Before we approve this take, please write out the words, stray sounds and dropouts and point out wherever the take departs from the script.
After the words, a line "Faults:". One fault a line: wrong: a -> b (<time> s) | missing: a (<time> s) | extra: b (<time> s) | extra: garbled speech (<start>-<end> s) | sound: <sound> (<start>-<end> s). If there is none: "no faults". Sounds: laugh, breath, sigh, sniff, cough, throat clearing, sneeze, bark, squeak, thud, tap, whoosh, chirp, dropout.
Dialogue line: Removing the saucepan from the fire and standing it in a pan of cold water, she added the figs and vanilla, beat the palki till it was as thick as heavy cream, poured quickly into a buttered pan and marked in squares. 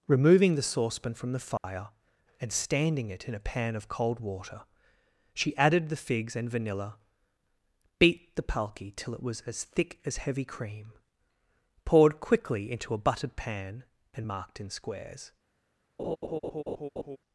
Removing the saucepan from the fire and standing it in a pan of cold water, she added the figs and vanilla, beat the palki till it was as thick as heavy cream, poured quickly into a buttered pan and marked in squares.
Faults:
sound: dropout (1.6-1.6 s)
sound: laugh (16.0-17.2 s)